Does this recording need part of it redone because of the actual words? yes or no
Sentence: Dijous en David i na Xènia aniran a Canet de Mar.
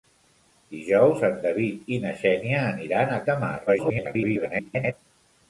yes